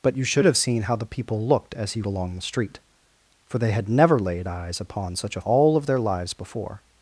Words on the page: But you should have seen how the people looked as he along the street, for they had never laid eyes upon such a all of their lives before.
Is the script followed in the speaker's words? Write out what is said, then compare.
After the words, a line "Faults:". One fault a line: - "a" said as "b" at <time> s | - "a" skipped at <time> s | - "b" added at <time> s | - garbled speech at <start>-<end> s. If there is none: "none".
But you should have seen how the people looked as he along the street, for they had never laid eyes upon such a all of their lives before.
Faults:
none